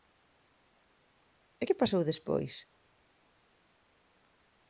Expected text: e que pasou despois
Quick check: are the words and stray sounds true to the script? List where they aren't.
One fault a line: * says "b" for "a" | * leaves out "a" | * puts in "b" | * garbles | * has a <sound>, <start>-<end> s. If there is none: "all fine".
all fine